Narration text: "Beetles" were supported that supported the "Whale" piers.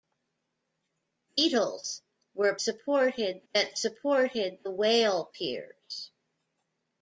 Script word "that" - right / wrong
right